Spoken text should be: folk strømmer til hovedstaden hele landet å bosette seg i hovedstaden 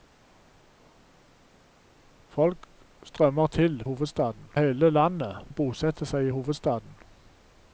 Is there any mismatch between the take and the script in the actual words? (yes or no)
no